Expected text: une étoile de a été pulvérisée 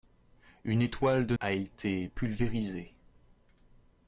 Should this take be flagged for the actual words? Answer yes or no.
no